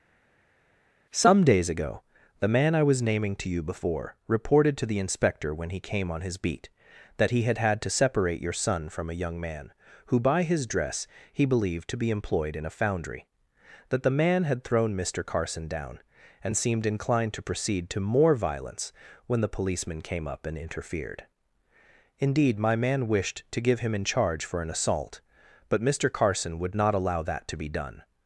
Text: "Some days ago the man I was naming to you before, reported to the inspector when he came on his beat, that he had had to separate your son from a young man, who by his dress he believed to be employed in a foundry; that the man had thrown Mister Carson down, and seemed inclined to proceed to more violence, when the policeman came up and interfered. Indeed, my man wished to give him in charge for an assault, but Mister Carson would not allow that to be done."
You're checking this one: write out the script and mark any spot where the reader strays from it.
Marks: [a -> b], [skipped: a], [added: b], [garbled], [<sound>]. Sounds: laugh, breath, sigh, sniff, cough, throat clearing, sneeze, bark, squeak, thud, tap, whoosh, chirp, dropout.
"Some days ago the man I was naming to you before, reported to the inspector when he came on his beat, that he had had to separate your son from a young man, who by his dress he believed to be employed in a foundry; that the man had thrown Mister Carson down, and seemed inclined to proceed to more violence, when the policeman came up and interfered. Indeed, my man wished to give him in charge for an assault, but Mister Carson would not allow that to be done."